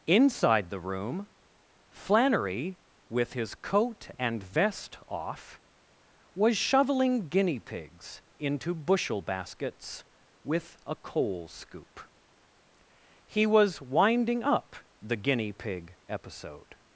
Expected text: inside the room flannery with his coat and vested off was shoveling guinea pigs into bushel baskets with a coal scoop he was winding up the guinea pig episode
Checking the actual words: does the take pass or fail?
fail